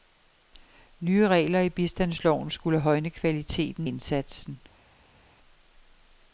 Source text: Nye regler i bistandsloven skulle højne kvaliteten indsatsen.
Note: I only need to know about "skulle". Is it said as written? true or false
true